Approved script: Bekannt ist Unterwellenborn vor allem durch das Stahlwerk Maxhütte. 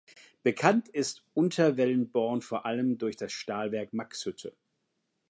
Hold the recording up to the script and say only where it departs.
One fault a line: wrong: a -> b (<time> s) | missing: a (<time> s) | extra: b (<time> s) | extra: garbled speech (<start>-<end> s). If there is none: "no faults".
no faults